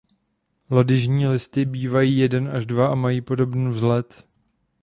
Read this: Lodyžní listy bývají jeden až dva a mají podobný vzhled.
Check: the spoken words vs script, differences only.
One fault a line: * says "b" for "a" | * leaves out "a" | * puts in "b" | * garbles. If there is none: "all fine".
all fine